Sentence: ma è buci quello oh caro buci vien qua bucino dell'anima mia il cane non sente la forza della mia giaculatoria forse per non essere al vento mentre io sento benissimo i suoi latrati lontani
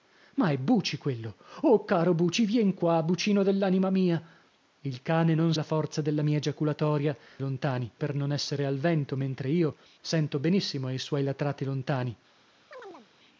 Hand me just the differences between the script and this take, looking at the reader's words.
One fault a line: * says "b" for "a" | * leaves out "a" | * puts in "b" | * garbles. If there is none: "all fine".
* leaves out "sente"
* says "lontani" for "forse"